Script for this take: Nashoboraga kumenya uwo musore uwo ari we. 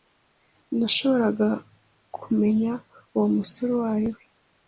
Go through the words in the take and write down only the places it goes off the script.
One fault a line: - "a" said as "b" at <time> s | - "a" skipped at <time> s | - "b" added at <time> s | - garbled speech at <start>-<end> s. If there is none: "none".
none